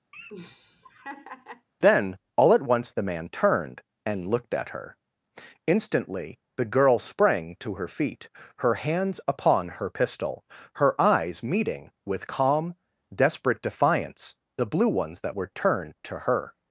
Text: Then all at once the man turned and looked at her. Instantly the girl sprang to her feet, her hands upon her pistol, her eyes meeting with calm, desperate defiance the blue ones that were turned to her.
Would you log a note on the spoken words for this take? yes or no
no